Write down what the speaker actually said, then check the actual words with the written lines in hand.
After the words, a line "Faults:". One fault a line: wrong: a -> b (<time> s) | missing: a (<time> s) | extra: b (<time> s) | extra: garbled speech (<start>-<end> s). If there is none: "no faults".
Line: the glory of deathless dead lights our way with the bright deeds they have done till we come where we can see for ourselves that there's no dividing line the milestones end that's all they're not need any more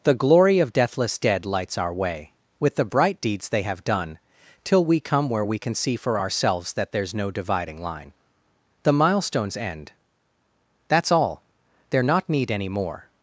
the glory of deathless dead lights our way with the bright deeds they have done till we come where we can see for ourselves that there's no dividing line the milestones end that's all they're not need any more
Faults:
no faults